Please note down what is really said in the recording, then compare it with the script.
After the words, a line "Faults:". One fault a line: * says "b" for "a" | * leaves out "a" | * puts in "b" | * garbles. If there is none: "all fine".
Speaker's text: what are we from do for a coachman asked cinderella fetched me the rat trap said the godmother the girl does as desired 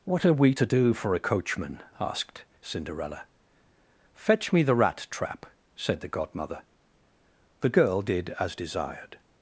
what are we to do for a coachman asked cinderella fetch me the rat trap said the godmother the girl did as desired
Faults:
* says "to" for "from"
* says "fetch" for "fetched"
* says "did" for "does"